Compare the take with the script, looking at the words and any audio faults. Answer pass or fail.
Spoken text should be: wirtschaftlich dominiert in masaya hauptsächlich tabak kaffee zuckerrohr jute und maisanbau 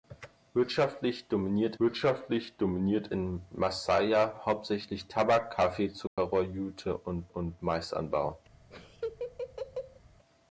fail